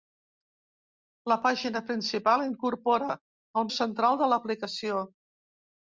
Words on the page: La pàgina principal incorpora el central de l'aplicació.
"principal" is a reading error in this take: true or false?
false